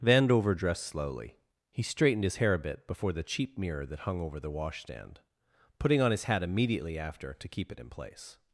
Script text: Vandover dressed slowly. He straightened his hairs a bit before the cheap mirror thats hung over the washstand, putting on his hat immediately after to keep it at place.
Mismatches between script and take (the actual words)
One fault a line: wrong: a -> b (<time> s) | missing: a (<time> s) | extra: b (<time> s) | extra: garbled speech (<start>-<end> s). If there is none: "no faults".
wrong: hairs -> hair (2.4 s)
wrong: thats -> that (3.9 s)
wrong: at -> in (7.8 s)